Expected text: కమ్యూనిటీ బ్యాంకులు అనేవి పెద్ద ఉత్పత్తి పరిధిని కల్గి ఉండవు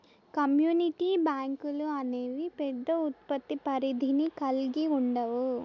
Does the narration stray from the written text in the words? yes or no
no